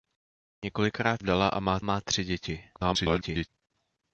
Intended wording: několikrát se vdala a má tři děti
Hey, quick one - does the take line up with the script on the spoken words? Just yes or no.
no